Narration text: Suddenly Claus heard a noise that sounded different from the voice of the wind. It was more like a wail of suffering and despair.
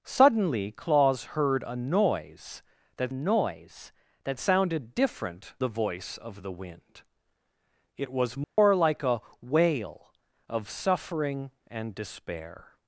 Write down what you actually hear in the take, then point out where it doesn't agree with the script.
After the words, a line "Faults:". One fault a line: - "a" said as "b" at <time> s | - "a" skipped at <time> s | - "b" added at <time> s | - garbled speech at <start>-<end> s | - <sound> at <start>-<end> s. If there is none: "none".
Suddenly Claus heard a noise that noise that sounded different the voice of the wind. It was more like a wail of suffering and despair.
Faults:
- "noise that" added at 3.1 s
- "from" skipped at 5.5 s
- dropout at 8.4-8.6 s